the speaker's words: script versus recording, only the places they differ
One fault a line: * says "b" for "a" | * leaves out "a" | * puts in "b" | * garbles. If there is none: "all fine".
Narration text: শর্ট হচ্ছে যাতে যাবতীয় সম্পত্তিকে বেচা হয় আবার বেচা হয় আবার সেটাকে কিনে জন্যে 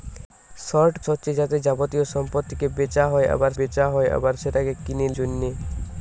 all fine